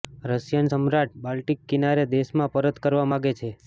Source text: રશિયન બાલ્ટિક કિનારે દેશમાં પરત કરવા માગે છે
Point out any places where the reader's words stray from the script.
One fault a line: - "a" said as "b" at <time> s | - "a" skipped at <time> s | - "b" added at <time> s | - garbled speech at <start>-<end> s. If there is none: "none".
- "સમ્રાટ" added at 0.7 s